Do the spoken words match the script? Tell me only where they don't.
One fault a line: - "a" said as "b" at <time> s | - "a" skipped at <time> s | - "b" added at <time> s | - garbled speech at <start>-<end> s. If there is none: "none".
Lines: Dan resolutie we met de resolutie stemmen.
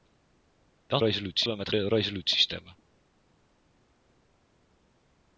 none